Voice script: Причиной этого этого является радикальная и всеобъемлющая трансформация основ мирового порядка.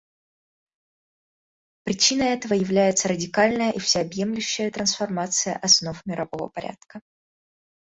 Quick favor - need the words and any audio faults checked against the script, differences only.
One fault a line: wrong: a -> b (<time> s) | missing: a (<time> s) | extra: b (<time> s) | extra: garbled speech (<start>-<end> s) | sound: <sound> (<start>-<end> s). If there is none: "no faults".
missing: этого (2.5 s)